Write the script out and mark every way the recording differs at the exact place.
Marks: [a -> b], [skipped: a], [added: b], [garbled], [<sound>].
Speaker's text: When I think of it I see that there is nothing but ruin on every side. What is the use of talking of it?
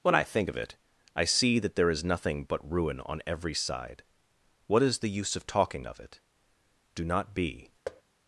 When I think of it I see that there is nothing but ruin on every side. What is the use of talking of it? [added: Do not be] [thud]